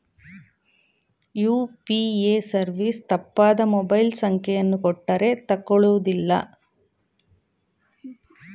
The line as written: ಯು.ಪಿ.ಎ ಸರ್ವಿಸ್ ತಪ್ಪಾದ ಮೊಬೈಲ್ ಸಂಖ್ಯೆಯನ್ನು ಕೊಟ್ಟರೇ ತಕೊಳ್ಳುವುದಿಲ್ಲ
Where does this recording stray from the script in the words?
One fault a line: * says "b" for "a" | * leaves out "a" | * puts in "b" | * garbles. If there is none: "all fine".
all fine